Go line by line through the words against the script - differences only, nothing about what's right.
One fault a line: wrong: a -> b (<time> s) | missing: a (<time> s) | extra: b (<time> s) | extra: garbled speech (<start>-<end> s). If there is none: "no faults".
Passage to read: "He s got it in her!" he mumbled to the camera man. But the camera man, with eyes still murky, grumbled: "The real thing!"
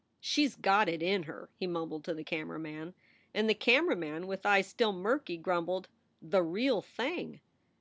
wrong: He -> She (0.2 s)
wrong: But -> And (3.3 s)